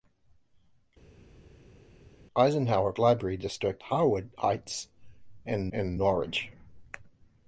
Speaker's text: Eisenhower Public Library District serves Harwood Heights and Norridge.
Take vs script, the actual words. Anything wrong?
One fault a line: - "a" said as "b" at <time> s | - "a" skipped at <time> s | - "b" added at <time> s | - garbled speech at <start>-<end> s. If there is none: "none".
- "Public" skipped at 2.9 s
- "serves" skipped at 3.9 s
- "and" added at 5.7 s